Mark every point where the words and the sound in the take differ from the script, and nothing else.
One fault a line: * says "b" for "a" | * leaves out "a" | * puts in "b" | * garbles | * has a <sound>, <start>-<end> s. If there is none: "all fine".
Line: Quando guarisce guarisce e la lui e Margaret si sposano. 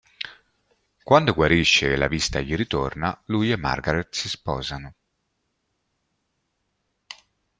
* leaves out "guarisce"
* puts in "vista gli ritorna"